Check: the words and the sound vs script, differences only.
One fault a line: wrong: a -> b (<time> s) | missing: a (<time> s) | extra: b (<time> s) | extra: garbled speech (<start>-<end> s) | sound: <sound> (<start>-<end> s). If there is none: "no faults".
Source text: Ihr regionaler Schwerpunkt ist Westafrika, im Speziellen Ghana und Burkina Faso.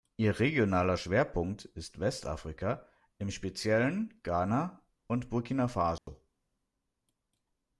sound: dropout (6.0-6.1 s)